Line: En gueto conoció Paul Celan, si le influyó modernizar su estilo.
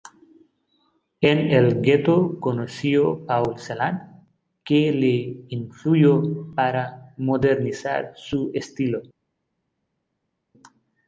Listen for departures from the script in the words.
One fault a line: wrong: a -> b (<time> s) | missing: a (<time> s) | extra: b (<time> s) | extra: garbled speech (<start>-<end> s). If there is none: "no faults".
extra: el (1.5 s)
wrong: si -> que (4.6 s)
extra: para (6.5 s)